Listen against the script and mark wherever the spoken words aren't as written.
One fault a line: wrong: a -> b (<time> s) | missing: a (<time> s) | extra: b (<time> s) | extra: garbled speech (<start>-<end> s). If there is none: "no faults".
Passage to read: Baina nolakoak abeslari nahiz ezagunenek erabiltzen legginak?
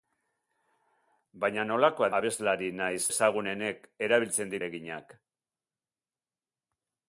no faults